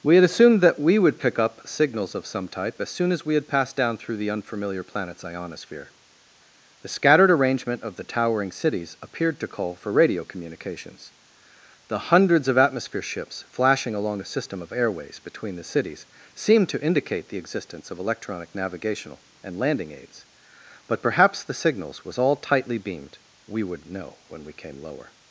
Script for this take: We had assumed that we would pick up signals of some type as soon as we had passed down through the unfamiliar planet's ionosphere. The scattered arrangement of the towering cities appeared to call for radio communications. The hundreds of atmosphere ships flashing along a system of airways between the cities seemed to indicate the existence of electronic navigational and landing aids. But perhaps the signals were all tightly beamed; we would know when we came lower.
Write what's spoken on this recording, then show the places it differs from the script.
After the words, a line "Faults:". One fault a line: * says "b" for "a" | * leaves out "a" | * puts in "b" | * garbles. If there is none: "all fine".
We had assumed that we would pick up signals of some type as soon as we had passed down through the unfamiliar planet's ionosphere. The scattered arrangement of the towering cities appeared to call for radio communications. The hundreds of atmosphere ships flashing along a system of airways between the cities seemed to indicate the existence of electronic navigational and landing aids. But perhaps the signals was all tightly beamed; we would know when we came lower.
Faults:
* says "was" for "were"